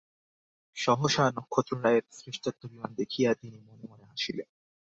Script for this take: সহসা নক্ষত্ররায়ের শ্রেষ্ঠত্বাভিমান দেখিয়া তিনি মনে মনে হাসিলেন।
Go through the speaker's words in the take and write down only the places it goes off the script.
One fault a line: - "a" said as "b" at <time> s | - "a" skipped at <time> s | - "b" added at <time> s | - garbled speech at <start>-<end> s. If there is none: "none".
none